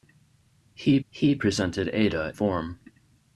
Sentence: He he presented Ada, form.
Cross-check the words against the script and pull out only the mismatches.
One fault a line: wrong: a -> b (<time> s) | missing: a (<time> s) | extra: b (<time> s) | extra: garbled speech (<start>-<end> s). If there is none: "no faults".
no faults